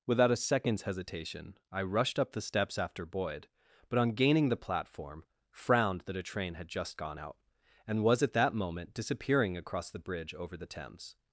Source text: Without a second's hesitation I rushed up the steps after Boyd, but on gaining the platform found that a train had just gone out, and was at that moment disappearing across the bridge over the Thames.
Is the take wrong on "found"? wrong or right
wrong